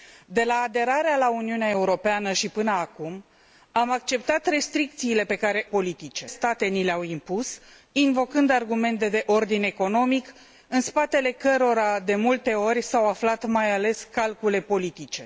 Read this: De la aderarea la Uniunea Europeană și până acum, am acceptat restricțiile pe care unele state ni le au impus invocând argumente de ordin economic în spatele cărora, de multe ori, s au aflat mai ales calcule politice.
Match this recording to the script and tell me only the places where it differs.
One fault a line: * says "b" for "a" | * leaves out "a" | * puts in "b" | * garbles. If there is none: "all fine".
* says "politice" for "unele"